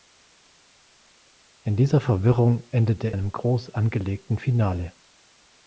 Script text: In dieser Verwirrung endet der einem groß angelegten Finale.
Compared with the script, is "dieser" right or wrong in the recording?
right